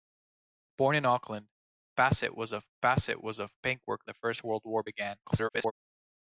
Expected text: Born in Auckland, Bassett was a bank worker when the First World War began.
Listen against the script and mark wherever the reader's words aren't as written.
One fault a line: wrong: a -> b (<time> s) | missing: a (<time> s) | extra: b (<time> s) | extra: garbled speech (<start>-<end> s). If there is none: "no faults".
extra: Bassett was a (2.8 s)
missing: when (4.1 s)
extra: garbled speech (5.2-5.7 s)